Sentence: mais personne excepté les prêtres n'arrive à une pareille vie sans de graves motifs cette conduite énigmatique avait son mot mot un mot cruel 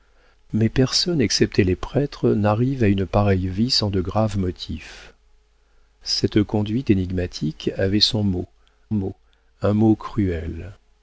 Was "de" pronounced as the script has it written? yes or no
yes